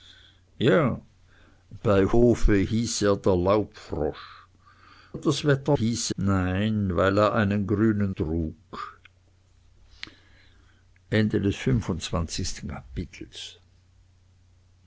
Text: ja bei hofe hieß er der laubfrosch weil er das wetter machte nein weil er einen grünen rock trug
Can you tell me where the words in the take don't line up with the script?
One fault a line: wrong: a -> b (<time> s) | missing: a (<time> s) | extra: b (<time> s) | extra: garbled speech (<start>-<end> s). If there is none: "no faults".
missing: weil (4.2 s)
wrong: machte -> hieß (5.8 s)
missing: rock (8.1 s)